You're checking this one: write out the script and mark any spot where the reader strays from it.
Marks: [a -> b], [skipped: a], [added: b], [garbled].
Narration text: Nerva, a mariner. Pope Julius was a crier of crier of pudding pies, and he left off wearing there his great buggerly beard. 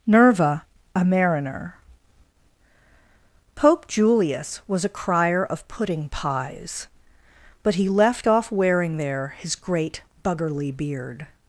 Nerva, a mariner. Pope Julius was a crier of [skipped: crier of] pudding pies, [and -> but] he left off wearing there his great buggerly beard.